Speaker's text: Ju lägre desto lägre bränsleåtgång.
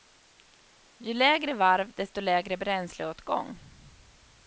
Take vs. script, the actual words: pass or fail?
fail